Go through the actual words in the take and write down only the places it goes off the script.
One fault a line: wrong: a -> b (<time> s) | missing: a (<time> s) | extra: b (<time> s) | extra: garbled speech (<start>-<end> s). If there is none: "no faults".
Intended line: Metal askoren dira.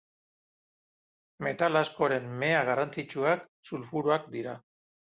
extra: mea garrantzitsuak sulfuroak (2.5 s)